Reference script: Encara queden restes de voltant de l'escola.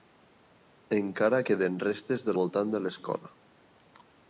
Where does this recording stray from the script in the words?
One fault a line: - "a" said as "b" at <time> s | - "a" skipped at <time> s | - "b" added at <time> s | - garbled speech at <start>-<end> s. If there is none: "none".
none